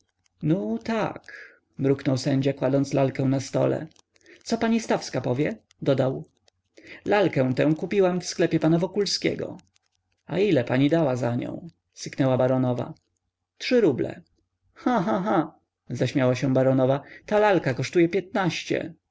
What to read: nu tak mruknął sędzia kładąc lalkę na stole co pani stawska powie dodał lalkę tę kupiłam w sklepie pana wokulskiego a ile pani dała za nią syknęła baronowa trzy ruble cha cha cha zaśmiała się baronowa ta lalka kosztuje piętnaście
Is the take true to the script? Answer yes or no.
yes